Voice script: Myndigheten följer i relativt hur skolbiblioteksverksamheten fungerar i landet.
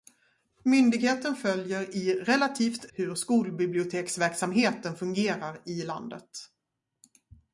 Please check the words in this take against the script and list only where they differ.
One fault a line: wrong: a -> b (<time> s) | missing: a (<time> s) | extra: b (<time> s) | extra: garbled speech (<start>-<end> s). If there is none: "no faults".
no faults